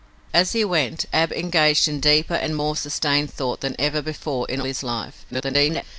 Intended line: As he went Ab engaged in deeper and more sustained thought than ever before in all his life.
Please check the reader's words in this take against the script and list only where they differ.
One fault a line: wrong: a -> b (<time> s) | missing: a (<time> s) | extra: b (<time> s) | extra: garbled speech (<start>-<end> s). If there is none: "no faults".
missing: all (4.6 s)
extra: garbled speech (5.3-5.8 s)